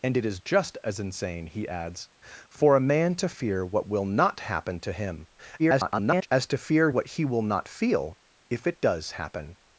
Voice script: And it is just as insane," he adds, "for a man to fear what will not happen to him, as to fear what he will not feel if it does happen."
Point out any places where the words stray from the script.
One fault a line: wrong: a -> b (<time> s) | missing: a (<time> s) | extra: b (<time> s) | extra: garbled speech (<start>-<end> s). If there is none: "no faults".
extra: garbled speech (5.6-6.3 s)